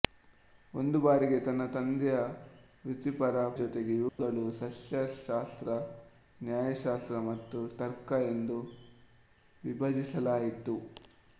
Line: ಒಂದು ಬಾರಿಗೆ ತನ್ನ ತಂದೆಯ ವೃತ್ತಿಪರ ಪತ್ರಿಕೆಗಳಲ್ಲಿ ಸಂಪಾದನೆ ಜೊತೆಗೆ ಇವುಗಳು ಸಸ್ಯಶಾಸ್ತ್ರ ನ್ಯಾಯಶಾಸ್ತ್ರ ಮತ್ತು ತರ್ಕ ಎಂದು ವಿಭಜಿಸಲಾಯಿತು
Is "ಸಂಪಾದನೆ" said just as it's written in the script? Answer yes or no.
no